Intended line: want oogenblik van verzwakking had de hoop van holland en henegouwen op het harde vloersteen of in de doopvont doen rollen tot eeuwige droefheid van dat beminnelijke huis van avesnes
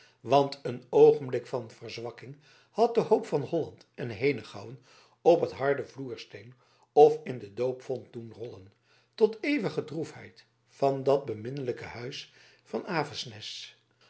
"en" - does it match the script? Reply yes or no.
yes